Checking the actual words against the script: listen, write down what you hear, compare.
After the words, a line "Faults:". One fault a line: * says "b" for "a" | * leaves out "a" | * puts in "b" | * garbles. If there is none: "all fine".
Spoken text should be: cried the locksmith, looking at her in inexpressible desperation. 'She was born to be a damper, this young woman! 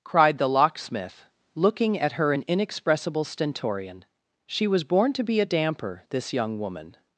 cried the locksmith, looking at her in inexpressible stentorian. 'She was born to be a damper, this young woman!
Faults:
* says "stentorian" for "desperation"